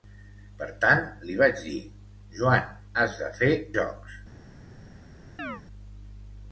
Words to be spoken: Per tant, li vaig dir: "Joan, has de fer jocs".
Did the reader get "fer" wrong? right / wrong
right